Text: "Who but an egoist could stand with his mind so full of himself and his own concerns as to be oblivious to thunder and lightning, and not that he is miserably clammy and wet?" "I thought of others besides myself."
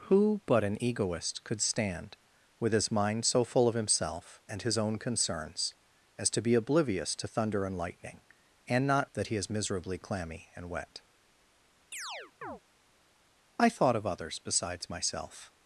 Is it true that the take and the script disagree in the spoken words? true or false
false